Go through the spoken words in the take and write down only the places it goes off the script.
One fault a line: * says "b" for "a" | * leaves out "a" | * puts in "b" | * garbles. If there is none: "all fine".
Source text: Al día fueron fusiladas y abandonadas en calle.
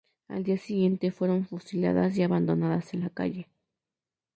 * puts in "siguiente"
* puts in "la"